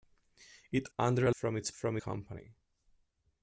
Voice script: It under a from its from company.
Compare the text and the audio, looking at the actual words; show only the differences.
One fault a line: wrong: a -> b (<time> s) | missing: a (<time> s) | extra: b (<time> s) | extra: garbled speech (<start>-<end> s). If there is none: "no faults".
no faults